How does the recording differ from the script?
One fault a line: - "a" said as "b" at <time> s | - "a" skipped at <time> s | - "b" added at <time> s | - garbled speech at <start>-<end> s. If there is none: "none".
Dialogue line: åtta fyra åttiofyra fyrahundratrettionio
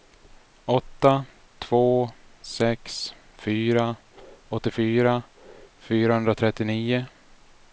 - "två sex" added at 1.6 s